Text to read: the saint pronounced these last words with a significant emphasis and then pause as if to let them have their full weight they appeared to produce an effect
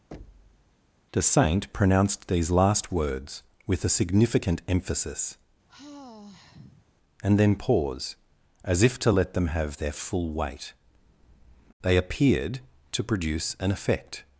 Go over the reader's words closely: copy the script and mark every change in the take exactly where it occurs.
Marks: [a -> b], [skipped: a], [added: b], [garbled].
the saint pronounced these last words with a significant emphasis and then pause as if to let them have their full weight they appeared to produce an effect